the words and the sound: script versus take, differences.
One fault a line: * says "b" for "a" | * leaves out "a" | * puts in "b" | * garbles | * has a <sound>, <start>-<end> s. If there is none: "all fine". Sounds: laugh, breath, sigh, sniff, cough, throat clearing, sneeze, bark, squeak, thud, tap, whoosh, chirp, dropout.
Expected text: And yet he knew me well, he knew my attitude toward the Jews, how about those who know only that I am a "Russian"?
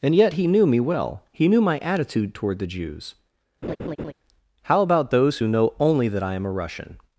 * has a laugh, 3.6-4.1 s